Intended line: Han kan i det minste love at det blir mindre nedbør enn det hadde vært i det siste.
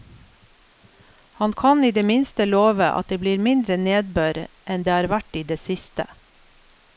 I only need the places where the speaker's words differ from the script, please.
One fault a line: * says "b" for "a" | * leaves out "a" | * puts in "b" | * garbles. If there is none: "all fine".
* says "har" for "hadde"